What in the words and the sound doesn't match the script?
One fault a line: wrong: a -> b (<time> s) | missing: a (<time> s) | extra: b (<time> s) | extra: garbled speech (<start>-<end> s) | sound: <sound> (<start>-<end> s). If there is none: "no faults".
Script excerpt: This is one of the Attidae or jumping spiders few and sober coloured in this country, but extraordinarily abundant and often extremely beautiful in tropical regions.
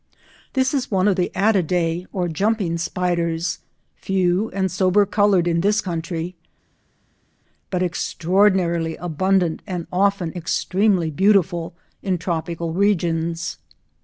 no faults